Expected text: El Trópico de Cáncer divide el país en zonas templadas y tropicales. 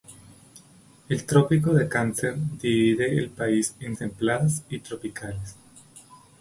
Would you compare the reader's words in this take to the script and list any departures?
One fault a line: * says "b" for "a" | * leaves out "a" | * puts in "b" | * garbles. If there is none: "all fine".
* leaves out "zonas"